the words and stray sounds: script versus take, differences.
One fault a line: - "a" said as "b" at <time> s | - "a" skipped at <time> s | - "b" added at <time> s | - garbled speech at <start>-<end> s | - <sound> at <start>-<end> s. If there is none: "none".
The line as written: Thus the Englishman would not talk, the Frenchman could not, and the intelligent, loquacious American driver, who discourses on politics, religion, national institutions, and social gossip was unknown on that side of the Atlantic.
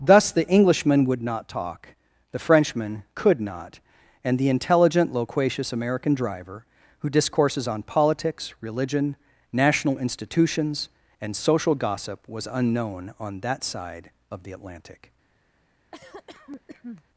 - cough at 15.9-17.0 s